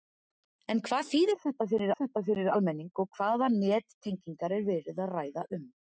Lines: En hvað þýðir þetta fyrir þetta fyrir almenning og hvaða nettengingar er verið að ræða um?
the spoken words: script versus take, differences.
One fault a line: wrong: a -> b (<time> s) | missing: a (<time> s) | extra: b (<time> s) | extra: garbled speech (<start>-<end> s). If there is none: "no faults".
no faults